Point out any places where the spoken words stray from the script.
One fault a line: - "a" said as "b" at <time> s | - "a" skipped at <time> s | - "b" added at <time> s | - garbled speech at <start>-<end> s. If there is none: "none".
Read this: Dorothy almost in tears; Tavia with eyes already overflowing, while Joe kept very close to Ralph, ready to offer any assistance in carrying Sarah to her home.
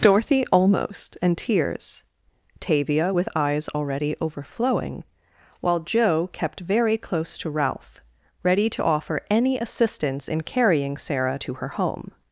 - "in" said as "and" at 1.2 s